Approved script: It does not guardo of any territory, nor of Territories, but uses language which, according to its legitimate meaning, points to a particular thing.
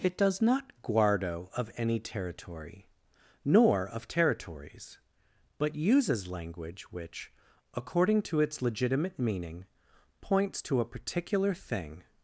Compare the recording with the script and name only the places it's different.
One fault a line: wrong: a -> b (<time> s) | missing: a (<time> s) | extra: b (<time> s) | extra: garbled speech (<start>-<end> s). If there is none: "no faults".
no faults